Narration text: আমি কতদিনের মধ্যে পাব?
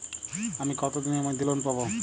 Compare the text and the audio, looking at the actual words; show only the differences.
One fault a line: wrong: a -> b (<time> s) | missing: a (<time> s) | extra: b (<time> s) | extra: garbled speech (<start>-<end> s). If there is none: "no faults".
extra: লোন (1.4 s)